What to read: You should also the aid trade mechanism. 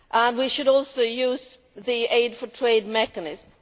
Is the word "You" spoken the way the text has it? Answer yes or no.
no